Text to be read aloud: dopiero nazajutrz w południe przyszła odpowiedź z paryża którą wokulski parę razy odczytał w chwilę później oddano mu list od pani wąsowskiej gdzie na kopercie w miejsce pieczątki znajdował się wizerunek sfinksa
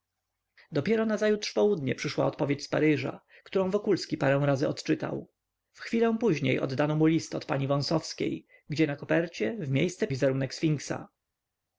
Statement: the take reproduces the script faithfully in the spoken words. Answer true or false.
false